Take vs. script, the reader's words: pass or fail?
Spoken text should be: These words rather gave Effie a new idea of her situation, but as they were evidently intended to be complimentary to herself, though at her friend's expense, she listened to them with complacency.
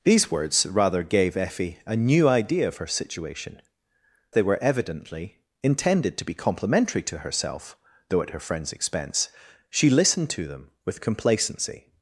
fail